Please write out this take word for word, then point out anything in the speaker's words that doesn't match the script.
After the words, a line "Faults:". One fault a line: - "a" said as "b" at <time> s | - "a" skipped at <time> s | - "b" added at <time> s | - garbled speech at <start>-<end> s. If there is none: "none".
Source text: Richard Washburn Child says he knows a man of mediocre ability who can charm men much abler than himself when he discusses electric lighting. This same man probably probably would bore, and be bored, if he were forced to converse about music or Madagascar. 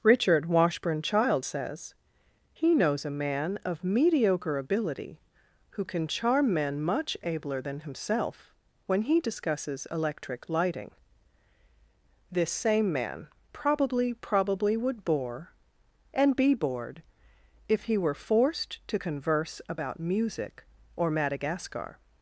Richard Washburn Child says he knows a man of mediocre ability who can charm men much abler than himself when he discusses electric lighting. This same man probably probably would bore, and be bored, if he were forced to converse about music or Madagascar.
Faults:
none